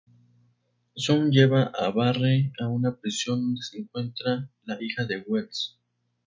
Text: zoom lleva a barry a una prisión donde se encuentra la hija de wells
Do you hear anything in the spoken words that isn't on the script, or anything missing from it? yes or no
no